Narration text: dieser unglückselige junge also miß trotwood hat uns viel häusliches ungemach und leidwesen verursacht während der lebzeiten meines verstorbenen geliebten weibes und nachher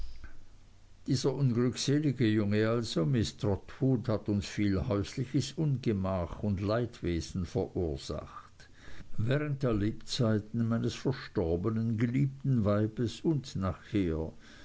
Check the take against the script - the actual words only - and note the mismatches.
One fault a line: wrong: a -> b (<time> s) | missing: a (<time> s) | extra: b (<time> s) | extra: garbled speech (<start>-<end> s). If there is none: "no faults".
no faults